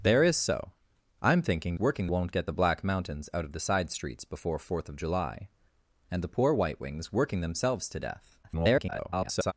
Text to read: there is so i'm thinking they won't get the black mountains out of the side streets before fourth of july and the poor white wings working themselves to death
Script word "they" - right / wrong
wrong